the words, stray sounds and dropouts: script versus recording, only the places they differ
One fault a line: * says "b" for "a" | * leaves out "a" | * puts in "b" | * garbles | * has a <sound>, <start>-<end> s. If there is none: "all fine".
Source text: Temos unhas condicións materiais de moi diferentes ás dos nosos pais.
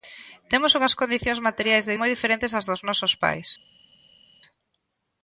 all fine